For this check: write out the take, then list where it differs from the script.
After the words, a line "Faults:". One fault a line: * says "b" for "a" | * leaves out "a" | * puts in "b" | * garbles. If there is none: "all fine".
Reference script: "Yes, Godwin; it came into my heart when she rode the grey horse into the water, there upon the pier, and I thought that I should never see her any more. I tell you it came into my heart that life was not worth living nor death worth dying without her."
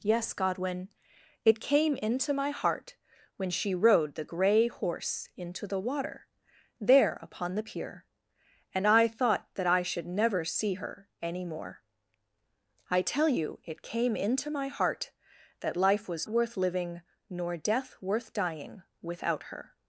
"Yes, Godwin; it came into my heart when she rode the grey horse into the water, there upon the pier, and I thought that I should never see her any more. I tell you it came into my heart that life was worth living nor death worth dying without her."
Faults:
* leaves out "not"